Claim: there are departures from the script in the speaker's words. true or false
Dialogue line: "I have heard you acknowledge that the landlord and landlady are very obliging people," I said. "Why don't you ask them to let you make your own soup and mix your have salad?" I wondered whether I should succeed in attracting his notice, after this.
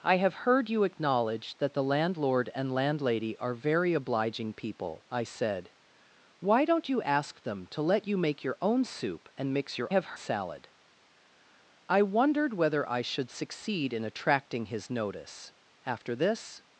false